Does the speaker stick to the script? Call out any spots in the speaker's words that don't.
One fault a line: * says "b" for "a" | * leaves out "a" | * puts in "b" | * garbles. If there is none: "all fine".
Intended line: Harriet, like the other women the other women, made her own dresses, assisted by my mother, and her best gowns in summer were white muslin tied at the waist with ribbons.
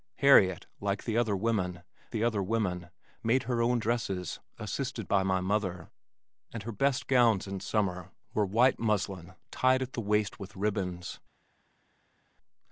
all fine